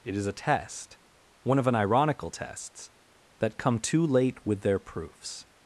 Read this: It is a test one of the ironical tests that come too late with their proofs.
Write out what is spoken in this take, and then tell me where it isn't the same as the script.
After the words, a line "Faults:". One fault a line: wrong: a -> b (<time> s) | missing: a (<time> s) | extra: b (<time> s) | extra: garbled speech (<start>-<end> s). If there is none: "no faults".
It is a test one of an ironical tests that come too late with their proofs.
Faults:
wrong: the -> an (1.7 s)